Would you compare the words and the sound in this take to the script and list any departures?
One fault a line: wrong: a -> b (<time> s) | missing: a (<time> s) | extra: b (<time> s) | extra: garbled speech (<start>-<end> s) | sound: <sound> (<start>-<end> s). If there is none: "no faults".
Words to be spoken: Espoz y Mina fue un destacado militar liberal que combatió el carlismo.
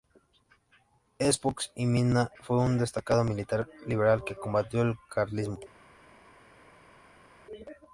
no faults